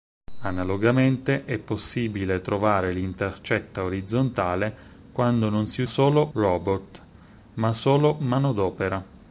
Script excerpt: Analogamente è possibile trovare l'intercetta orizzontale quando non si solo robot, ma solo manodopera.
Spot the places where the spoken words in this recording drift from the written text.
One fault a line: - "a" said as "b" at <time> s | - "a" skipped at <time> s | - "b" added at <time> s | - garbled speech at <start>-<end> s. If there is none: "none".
none